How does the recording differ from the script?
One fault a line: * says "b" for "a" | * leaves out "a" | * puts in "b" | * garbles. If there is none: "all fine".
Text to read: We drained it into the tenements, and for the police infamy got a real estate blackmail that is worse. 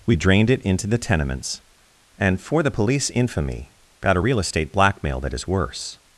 all fine